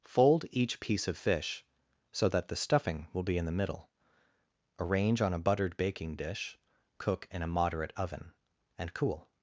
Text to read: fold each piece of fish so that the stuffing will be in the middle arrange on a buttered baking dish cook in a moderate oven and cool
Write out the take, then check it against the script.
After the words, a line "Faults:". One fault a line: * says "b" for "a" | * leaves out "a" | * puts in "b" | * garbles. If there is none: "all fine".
fold each piece of fish so that the stuffing will be in the middle arrange on a buttered baking dish cook in a moderate oven and cool
Faults:
all fine